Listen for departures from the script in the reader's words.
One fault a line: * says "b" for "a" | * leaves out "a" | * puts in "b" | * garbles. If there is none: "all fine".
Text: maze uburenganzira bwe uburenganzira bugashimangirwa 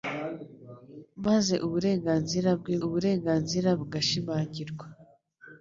all fine